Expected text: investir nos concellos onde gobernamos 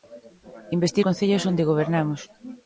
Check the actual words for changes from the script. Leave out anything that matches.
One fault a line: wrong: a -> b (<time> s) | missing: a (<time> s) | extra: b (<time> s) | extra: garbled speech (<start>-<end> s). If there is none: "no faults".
missing: nos (1.1 s)